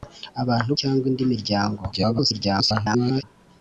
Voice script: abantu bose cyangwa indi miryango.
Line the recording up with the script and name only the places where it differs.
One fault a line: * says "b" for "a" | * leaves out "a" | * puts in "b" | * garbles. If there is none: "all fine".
* leaves out "bose"
* garbles